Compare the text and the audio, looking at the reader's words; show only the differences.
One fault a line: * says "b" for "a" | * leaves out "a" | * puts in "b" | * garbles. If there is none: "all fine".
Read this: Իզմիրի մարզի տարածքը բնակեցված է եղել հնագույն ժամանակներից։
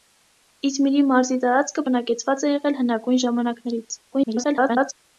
* garbles